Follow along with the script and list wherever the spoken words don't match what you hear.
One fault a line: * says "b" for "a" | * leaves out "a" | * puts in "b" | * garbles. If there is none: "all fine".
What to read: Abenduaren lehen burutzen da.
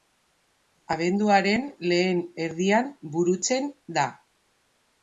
* puts in "erdian"